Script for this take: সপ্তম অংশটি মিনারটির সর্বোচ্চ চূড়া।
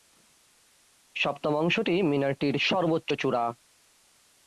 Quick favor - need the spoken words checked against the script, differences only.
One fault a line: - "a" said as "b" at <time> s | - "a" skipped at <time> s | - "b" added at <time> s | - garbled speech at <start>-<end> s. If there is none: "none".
none